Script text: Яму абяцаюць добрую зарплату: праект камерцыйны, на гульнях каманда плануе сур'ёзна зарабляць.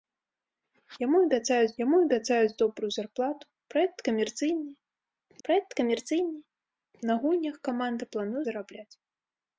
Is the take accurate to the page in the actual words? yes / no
no